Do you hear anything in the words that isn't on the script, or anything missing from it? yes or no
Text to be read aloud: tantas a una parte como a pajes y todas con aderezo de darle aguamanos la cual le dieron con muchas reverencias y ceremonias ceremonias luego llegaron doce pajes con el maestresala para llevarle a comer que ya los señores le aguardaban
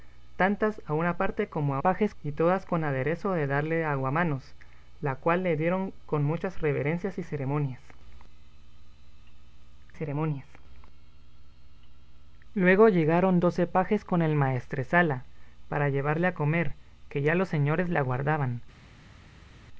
no